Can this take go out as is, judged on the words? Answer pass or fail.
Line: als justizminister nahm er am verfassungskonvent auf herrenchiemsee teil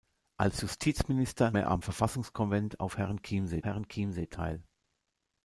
fail